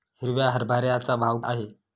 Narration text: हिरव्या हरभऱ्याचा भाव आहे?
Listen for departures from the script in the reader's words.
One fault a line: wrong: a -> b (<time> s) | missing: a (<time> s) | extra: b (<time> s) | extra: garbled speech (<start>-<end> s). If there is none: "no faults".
no faults